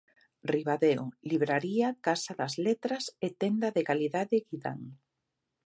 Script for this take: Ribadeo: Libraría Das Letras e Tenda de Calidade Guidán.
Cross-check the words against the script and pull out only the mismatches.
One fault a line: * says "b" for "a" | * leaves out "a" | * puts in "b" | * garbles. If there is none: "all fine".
* puts in "Casa"